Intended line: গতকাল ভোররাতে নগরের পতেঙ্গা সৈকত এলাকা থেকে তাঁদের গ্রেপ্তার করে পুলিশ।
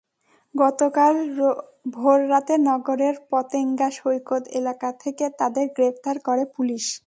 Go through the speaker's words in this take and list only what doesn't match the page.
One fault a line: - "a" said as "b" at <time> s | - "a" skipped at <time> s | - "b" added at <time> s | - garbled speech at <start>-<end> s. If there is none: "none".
none